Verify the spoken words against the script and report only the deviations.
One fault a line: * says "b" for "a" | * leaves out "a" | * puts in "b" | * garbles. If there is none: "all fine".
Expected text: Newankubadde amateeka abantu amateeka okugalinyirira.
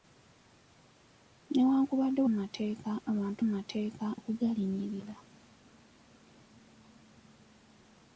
all fine